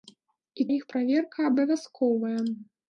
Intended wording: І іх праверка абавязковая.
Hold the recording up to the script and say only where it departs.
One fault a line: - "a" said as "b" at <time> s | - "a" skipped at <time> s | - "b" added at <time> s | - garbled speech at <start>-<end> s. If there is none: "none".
none